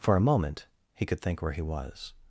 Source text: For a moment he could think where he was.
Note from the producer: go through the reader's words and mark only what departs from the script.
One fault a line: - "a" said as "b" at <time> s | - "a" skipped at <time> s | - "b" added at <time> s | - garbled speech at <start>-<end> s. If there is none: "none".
none